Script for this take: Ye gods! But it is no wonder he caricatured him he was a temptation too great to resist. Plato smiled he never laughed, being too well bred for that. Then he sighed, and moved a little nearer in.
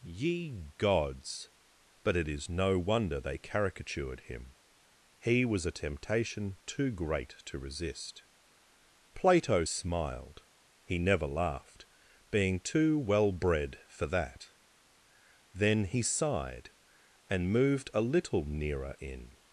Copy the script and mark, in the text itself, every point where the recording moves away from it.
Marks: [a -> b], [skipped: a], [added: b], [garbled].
Ye gods! But it is no wonder [he -> they] caricatured him he was a temptation too great to resist. Plato smiled he never laughed, being too well bred for that. Then he sighed, and moved a little nearer in.